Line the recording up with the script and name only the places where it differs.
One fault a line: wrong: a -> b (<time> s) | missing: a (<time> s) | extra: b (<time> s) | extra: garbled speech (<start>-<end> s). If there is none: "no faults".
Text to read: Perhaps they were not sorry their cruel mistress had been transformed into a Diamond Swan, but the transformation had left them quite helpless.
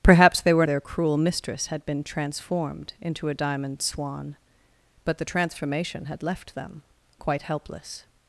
missing: not sorry (0.7 s)